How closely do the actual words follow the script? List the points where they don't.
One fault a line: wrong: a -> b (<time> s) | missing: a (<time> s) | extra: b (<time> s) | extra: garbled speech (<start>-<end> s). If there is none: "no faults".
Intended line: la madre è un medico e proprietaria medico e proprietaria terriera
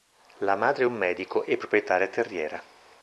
missing: medico e proprietaria (2.1 s)